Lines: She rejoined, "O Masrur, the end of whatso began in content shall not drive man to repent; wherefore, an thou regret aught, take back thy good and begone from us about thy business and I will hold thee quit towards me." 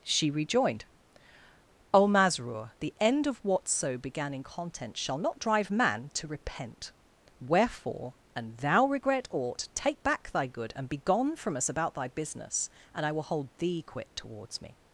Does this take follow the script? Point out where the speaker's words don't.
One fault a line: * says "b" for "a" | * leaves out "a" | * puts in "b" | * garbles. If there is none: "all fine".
all fine